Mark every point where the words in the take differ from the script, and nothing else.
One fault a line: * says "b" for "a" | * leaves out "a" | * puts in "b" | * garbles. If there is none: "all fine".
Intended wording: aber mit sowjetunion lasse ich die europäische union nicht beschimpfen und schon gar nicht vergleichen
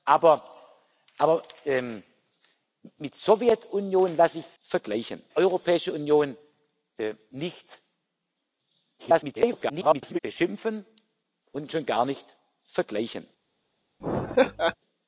* says "vergleichen" for "die"
* garbles